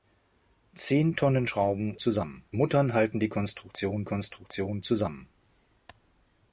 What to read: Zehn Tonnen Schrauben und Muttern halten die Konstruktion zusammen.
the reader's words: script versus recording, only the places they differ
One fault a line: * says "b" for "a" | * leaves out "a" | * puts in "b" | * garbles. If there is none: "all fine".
* says "zusammen" for "und"
* puts in "Konstruktion"